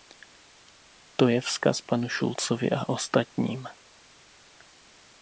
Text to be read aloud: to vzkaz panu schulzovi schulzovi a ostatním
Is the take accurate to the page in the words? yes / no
no